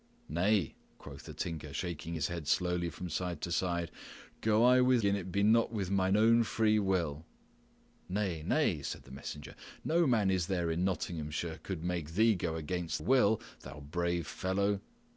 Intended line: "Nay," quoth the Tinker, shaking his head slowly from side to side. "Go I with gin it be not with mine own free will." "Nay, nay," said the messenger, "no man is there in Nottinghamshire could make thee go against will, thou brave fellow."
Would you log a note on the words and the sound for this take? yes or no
no